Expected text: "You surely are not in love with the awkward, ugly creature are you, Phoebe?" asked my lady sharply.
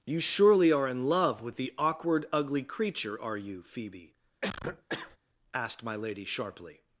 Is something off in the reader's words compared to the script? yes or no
yes